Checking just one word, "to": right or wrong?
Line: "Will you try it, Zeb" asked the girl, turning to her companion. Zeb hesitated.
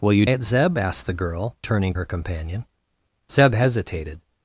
wrong